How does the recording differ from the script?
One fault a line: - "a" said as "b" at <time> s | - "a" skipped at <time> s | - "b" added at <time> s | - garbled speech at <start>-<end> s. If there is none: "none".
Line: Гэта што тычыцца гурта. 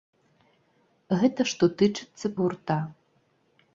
none